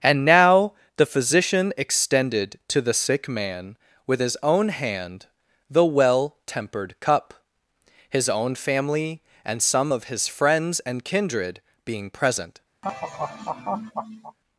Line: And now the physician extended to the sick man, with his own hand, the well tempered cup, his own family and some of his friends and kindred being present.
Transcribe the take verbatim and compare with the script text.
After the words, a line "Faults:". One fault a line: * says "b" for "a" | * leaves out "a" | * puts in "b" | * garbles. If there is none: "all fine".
And now the physician extended to the sick man, with his own hand, the well tempered cup, his own family and some of his friends and kindred being present.
Faults:
all fine